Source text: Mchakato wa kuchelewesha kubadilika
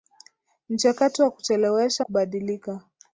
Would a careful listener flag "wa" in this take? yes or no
no